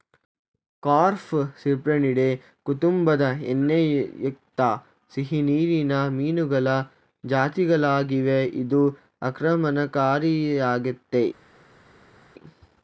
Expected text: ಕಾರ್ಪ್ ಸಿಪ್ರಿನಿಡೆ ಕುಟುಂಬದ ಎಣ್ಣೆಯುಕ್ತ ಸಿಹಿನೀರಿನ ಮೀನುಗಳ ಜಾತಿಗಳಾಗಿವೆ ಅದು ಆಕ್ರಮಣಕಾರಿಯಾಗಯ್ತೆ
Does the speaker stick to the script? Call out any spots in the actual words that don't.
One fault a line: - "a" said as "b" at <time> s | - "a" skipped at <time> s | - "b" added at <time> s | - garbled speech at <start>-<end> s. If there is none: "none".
- "ಅದು" said as "ಇದು" at 8.6 s